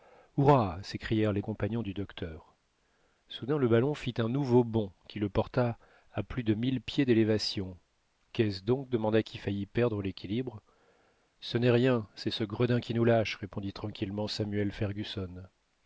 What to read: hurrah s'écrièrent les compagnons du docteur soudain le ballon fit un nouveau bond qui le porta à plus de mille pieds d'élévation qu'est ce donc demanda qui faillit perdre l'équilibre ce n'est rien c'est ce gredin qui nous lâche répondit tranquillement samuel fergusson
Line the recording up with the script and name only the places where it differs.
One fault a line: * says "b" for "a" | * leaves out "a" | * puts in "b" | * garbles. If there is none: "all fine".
all fine